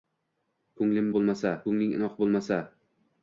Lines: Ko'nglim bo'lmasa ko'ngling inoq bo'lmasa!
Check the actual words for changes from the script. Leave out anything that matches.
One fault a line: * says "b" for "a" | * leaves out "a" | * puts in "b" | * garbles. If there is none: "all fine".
all fine